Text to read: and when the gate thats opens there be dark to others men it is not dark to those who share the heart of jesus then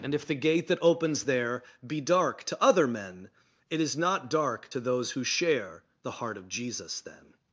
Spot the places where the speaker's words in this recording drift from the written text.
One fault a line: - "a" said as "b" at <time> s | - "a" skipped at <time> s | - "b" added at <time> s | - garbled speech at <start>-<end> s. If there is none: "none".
- "when" said as "if" at 0.1 s
- "thats" said as "that" at 0.7 s
- "others" said as "other" at 2.6 s